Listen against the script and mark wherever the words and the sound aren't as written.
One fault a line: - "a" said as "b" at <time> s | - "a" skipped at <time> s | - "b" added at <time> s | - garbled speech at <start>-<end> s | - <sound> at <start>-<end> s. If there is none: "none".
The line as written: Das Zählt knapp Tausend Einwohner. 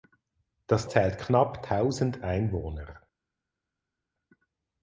none